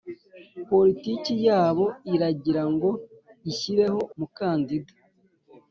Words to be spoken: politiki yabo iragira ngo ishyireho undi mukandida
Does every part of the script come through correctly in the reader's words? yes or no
no